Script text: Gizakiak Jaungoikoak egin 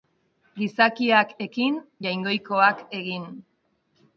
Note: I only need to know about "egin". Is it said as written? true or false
true